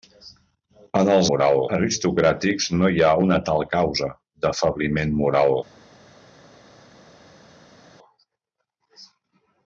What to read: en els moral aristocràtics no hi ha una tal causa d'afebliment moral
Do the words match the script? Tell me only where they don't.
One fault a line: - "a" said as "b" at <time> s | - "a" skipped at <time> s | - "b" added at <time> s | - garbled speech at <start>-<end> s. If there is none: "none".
none